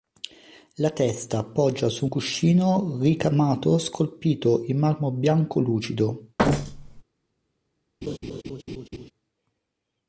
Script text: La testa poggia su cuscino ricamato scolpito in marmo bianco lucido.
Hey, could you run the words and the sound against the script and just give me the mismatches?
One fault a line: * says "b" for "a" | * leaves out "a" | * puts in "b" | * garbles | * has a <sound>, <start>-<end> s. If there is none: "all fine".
* has a thud, 6.4-7.0 s
* has a laugh, 8.0-9.1 s